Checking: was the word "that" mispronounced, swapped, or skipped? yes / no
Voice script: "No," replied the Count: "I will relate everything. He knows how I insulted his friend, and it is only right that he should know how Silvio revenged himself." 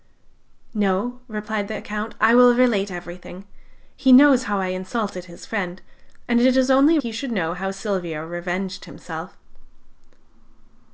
yes